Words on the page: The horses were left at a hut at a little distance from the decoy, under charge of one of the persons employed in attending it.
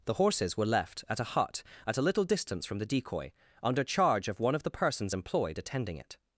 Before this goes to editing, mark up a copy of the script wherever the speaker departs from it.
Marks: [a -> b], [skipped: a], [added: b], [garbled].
The horses were left at a hut at a little distance from the decoy, under charge of one of the persons employed [skipped: in] attending it.